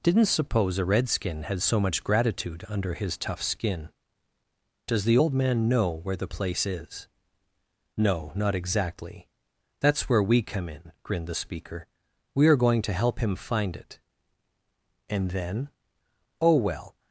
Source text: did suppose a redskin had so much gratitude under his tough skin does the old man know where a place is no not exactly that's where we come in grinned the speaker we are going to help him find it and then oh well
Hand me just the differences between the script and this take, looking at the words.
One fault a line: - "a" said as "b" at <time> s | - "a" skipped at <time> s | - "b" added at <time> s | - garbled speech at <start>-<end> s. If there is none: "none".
- "did" said as "didn't" at 0.0 s
- "a" said as "the" at 6.1 s